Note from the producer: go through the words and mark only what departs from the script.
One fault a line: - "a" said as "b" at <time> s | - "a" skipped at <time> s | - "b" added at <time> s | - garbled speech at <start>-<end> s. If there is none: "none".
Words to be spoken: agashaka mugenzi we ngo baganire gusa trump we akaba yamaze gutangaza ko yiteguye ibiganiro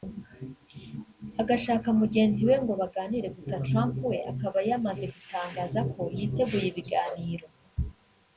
none